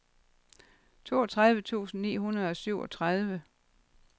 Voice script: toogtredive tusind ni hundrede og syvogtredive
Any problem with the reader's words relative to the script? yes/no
no